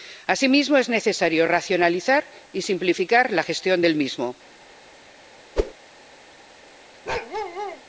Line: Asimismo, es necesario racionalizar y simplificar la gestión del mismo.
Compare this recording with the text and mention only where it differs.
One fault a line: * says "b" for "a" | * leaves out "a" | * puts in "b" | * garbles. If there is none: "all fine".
all fine